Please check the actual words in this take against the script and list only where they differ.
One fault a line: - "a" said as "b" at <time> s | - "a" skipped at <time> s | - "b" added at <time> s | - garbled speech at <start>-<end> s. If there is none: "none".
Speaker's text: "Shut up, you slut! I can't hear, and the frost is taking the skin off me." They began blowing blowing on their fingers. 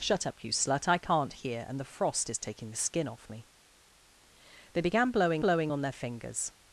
none